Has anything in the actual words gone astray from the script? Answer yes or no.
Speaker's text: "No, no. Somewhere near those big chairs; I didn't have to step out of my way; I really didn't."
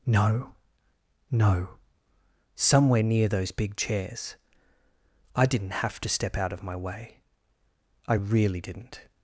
no